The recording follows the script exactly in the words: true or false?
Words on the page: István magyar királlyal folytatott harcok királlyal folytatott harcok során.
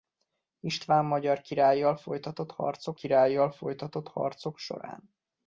true